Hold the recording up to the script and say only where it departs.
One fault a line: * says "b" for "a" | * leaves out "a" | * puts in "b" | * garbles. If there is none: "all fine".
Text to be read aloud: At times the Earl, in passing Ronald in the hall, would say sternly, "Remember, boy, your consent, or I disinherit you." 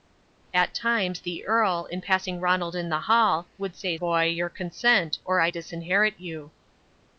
* leaves out "sternly Remember"